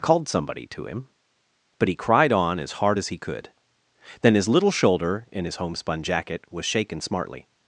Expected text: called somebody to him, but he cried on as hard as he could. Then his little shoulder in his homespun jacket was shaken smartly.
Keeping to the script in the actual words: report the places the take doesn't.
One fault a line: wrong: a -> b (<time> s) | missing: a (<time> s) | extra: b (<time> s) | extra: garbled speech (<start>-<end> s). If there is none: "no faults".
no faults